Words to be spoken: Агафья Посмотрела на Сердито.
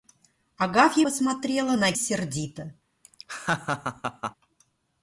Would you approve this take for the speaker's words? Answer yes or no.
yes